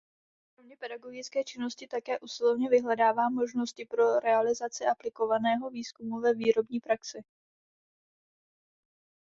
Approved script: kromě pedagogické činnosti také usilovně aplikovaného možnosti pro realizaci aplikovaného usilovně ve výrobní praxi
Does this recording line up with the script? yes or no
no